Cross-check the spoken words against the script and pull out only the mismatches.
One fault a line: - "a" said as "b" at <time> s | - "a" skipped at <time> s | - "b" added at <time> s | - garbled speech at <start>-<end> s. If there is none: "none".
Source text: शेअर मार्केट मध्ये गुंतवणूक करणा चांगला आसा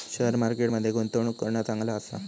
none